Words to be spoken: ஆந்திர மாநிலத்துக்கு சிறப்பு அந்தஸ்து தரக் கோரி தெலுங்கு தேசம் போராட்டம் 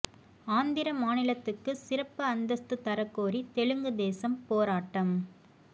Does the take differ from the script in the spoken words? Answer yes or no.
no